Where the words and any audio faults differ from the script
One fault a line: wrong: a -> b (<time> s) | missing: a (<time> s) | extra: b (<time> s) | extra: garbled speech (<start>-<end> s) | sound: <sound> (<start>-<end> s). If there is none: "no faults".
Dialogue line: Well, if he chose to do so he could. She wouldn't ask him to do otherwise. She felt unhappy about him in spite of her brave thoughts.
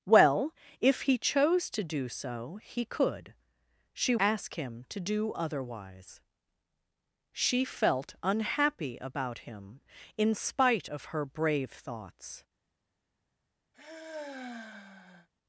missing: wouldn't (4.2 s)
sound: sigh (13.7-15.3 s)